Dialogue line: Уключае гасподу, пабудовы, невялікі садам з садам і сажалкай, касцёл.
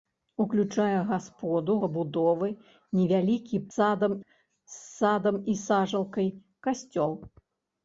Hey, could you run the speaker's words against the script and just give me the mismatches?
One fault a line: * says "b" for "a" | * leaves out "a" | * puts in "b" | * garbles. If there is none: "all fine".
all fine